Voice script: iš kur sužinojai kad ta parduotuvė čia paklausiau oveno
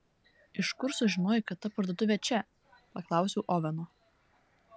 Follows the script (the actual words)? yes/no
yes